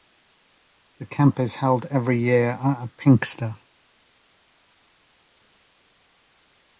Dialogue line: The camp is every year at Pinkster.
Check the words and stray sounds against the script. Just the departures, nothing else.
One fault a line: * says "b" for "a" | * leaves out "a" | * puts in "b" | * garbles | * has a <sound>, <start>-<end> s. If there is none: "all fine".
* puts in "held"